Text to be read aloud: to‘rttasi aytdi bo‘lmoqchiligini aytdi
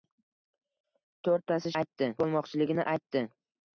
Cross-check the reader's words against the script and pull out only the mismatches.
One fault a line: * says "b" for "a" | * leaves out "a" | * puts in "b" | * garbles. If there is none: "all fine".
all fine